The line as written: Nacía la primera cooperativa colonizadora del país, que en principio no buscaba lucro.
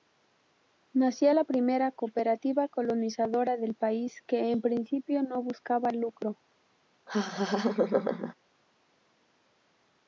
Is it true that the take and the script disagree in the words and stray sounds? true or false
true